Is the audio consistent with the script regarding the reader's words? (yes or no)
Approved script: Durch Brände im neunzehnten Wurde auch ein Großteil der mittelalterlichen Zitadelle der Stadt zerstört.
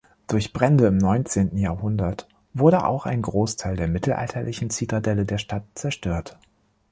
no